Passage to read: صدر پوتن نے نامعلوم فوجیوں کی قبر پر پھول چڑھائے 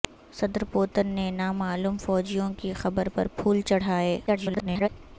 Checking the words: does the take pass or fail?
fail